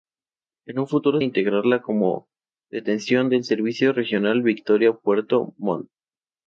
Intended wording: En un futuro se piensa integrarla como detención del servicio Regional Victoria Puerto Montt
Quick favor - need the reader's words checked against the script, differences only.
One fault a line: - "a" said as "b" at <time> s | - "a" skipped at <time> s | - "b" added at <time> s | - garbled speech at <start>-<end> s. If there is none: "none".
- "se piensa" skipped at 1.2 s